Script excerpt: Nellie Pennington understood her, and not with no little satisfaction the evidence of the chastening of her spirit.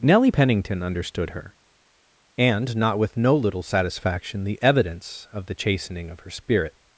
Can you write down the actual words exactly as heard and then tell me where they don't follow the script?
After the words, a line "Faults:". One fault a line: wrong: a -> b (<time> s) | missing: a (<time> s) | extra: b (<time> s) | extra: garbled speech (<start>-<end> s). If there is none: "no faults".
Nellie Pennington understood her, and not with no little satisfaction the evidence of the chastening of her spirit.
Faults:
no faults